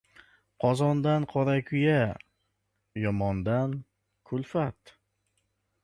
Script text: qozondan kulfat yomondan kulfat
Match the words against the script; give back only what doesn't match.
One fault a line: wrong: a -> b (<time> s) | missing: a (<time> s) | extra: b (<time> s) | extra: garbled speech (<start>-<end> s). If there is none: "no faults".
wrong: kulfat -> qorakuya (1.3 s)